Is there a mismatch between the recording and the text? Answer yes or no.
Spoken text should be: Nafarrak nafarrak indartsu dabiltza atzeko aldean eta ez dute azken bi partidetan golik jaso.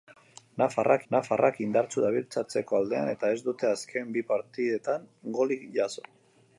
no